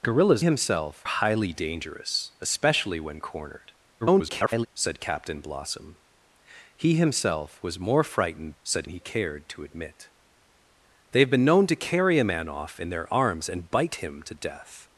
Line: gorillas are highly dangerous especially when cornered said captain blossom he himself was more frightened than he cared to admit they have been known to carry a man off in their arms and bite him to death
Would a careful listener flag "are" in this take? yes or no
yes